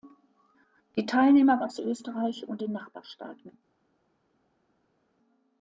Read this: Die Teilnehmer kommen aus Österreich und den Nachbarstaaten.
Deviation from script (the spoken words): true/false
true